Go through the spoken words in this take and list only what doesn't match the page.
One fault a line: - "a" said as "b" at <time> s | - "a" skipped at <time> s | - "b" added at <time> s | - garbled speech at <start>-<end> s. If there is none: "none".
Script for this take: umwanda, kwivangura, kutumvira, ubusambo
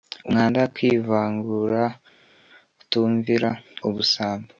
none